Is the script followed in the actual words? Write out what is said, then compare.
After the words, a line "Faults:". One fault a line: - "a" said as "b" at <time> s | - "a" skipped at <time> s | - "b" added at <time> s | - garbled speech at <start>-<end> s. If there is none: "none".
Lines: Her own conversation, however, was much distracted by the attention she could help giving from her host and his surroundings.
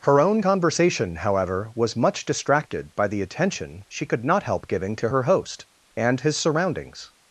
Her own conversation, however, was much distracted by the attention she could not help giving to her host and his surroundings.
Faults:
- "not" added at 4.2 s
- "from" said as "to" at 5.0 s